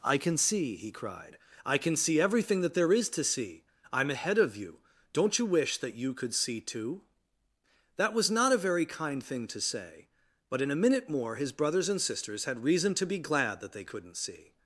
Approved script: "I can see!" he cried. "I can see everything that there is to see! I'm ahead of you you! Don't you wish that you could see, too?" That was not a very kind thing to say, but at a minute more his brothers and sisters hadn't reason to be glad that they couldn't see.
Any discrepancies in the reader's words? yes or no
yes